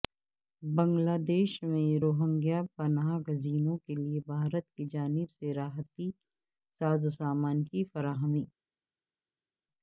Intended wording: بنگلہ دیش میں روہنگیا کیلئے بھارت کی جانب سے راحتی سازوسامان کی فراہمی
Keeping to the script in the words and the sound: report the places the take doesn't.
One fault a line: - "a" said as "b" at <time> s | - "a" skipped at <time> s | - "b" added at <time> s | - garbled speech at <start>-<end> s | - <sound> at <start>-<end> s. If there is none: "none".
- "پناہ گزینوں" added at 2.7 s